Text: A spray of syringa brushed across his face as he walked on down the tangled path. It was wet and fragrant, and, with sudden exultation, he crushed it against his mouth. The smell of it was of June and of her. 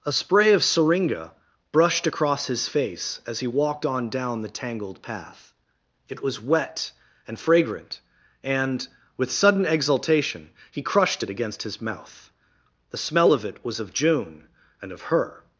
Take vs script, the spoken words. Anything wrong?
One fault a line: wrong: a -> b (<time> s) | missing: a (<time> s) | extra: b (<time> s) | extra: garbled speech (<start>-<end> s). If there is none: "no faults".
no faults